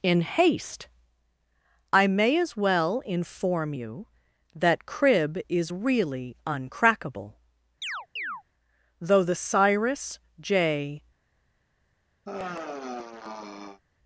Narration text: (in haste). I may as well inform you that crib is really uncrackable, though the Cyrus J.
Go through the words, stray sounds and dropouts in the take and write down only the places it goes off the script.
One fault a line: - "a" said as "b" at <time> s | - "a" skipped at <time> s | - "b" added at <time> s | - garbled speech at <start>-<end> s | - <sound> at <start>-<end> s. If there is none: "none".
- chirp at 7.8-8.4 s
- sigh at 12.3-13.8 s